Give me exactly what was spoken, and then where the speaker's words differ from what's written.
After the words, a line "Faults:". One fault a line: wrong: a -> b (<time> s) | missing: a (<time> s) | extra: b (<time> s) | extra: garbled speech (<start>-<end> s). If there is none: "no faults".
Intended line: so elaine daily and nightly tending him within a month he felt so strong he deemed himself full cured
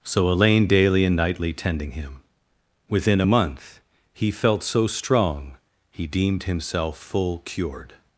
so elaine daily and nightly tending him within a month he felt so strong he deemed himself full cured
Faults:
no faults